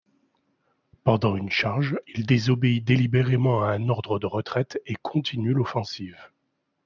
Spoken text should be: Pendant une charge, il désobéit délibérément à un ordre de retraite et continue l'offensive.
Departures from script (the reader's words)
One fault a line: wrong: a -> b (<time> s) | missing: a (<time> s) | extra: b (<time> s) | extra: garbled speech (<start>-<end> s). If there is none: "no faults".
no faults